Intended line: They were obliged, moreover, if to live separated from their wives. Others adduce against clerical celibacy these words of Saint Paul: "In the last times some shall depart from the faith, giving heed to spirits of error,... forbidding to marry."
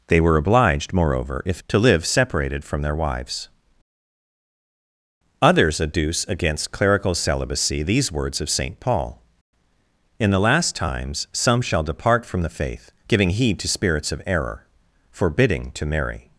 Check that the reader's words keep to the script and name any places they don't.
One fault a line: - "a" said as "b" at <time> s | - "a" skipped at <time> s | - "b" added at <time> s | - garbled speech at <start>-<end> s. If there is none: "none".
none